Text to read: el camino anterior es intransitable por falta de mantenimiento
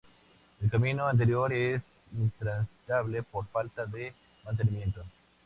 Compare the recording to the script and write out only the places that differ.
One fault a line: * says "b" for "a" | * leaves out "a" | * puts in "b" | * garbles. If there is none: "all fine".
all fine